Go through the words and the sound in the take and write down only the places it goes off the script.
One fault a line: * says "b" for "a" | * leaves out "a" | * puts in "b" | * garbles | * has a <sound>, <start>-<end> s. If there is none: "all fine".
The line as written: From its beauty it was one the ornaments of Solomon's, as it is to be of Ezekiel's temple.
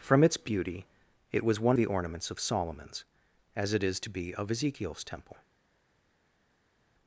all fine